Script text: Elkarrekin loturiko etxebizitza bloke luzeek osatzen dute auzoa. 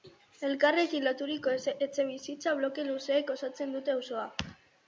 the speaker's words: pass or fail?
pass